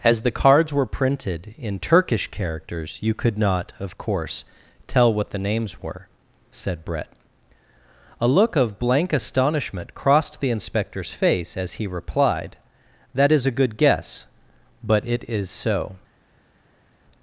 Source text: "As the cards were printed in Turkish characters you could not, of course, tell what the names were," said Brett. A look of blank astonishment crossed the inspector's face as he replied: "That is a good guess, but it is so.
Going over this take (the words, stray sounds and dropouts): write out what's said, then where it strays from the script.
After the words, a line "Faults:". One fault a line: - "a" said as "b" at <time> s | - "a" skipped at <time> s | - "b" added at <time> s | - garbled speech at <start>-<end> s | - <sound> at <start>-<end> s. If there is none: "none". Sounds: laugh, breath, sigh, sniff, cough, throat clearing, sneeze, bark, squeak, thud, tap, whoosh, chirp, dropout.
"As the cards were printed in Turkish characters you could not, of course, tell what the names were," said Brett. A look of blank astonishment crossed the inspector's face as he replied: "That is a good guess, but it is so.
Faults:
none